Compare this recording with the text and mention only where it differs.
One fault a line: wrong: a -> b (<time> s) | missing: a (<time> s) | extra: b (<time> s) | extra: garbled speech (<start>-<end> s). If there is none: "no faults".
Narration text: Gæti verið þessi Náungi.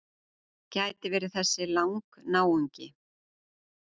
extra: Lang (1.7 s)